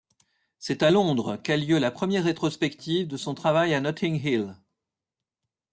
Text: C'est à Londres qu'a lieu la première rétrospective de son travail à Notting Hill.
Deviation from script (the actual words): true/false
false